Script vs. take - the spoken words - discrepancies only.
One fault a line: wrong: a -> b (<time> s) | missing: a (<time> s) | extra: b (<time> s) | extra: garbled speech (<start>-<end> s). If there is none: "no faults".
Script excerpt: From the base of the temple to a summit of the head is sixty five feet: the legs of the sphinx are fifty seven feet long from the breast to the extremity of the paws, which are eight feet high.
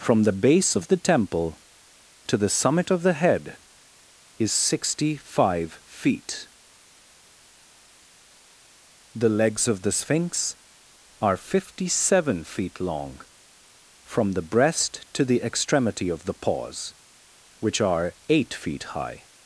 wrong: a -> the (2.4 s)